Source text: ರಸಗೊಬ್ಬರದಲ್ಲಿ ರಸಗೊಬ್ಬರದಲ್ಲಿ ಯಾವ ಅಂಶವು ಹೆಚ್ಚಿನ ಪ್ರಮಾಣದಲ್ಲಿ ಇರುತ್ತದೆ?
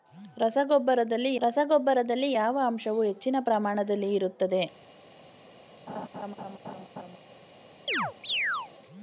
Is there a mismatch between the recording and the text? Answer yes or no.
no